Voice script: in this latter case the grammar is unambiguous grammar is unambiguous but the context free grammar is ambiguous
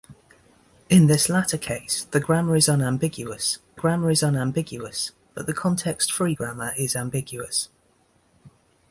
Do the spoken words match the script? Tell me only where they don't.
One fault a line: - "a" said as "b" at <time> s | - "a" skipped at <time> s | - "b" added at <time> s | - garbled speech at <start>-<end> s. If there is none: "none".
none